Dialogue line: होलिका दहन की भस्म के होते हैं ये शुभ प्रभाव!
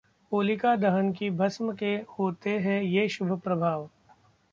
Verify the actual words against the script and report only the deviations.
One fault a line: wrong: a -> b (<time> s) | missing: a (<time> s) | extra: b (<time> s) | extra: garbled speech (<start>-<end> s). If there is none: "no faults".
no faults